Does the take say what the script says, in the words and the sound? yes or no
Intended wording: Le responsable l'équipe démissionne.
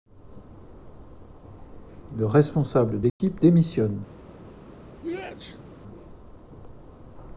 no